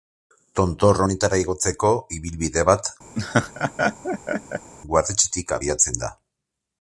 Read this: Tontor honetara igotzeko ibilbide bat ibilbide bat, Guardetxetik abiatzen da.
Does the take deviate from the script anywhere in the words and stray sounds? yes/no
yes